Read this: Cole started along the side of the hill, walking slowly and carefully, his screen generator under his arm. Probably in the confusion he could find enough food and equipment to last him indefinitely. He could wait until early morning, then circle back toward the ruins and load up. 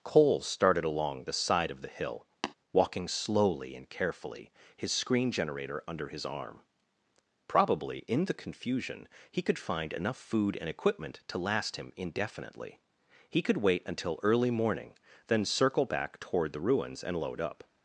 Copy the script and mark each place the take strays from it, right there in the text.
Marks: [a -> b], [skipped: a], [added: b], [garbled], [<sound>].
Cole started along the side of the hill, [tap] walking slowly and carefully, his screen generator under his arm. Probably in the confusion he could find enough food and equipment to last him indefinitely. He could wait until early morning, then circle back toward the ruins and load up.